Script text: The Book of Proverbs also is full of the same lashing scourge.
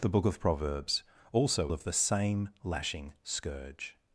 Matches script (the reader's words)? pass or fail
fail